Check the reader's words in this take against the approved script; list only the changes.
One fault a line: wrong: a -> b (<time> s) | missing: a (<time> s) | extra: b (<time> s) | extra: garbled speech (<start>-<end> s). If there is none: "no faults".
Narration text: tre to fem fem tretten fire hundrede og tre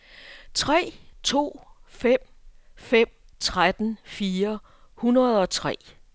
no faults